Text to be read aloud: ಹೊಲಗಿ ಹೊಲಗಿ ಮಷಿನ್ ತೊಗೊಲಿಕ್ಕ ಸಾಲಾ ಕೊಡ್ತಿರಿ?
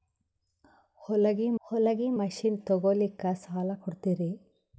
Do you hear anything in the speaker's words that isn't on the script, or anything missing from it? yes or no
no